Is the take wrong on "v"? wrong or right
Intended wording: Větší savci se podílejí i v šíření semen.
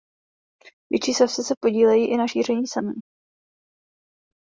wrong